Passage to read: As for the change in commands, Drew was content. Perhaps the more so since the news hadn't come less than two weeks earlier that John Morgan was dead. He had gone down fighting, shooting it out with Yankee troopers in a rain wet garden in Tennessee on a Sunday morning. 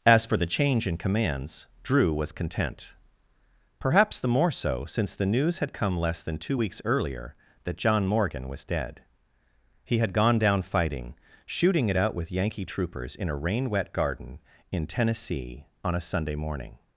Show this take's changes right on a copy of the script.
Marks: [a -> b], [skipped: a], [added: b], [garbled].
As for the change in commands, Drew was content. Perhaps the more so since the news [hadn't -> had] come less than two weeks earlier that John Morgan was dead. He had gone down fighting, shooting it out with Yankee troopers in a rain wet garden in Tennessee on a Sunday morning.